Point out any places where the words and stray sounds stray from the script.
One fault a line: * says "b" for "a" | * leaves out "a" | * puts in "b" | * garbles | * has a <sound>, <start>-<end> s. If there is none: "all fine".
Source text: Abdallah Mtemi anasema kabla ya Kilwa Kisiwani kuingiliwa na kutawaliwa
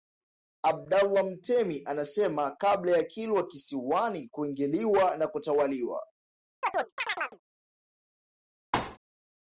* has a chirp, 6.6-7.4 s
* has a thud, 8.7-9.0 s